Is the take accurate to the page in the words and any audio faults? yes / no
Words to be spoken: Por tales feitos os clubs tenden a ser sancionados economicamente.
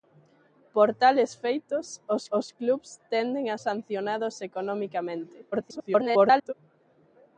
no